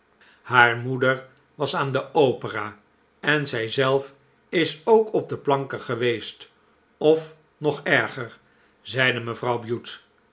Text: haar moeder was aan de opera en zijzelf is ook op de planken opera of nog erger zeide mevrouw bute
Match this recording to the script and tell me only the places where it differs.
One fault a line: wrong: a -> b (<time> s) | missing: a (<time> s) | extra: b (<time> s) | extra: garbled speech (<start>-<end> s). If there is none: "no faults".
wrong: opera -> geweest (5.8 s)